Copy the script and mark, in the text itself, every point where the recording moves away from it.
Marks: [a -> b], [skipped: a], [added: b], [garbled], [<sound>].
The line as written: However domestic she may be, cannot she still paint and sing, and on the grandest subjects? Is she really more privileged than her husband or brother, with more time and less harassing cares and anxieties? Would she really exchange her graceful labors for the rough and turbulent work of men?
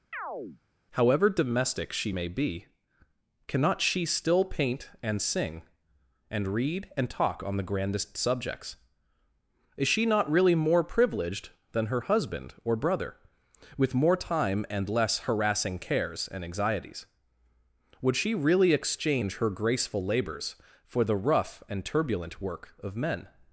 [chirp] However domestic she may be, cannot she still paint and sing, and [added: read and talk] on the grandest subjects? Is she [added: not] really more privileged than her husband or brother, with more time and less harassing cares and anxieties? Would she really exchange her graceful labors for the rough and turbulent work of men?